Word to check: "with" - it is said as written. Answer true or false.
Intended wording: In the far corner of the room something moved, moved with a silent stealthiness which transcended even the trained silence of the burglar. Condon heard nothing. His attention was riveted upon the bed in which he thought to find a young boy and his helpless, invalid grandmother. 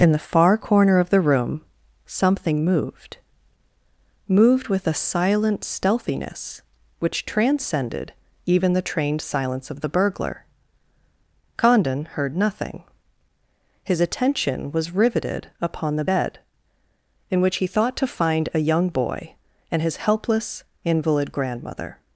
true